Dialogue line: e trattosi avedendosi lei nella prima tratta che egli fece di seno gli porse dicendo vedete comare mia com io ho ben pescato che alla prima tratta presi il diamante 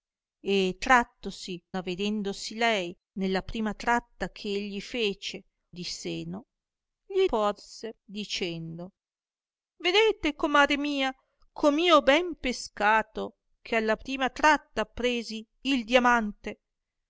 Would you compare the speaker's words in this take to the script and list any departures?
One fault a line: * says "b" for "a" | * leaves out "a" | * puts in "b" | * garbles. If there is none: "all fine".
all fine